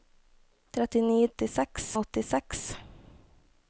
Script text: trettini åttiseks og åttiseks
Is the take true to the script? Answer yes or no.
yes